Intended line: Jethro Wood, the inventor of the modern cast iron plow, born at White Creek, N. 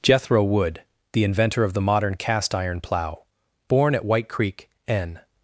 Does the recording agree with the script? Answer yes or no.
yes